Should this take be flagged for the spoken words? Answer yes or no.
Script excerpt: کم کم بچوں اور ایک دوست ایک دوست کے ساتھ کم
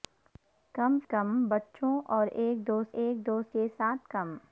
no